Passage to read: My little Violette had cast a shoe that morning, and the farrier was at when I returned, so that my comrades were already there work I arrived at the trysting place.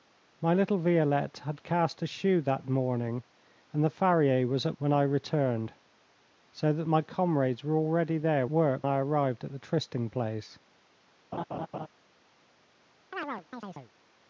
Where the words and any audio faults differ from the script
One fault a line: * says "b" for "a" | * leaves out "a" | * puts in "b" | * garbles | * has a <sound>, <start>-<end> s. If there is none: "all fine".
* has a laugh, 11.3-11.9 s
* has a chirp, 13.1-13.9 s